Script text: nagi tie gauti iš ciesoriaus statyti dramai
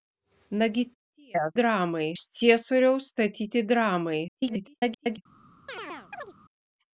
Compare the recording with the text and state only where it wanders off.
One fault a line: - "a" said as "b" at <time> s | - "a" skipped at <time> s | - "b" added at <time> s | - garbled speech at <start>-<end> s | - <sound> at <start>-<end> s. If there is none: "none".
- "gauti" said as "dramai" at 1.6 s
- garbled speech at 4.3-5.2 s
- chirp at 5.7-6.3 s